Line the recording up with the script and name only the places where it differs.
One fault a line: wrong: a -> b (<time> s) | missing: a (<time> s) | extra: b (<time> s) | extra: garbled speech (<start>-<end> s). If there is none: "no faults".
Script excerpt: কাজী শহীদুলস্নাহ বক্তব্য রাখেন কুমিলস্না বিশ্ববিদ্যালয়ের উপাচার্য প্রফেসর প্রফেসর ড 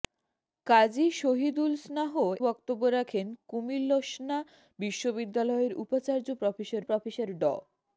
no faults